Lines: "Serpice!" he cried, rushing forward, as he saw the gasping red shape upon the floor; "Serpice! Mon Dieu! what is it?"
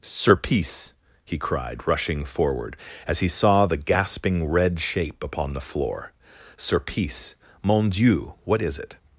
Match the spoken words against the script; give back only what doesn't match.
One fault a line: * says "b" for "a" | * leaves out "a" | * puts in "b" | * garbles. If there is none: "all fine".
all fine